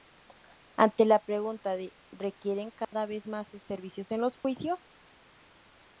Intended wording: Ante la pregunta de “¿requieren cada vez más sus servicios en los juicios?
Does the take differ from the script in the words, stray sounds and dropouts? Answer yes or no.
yes